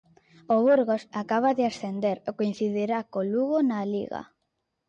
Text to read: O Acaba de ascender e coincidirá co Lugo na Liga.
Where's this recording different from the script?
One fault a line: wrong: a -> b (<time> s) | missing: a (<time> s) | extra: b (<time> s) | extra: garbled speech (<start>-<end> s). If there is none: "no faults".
extra: Burgos (0.7 s)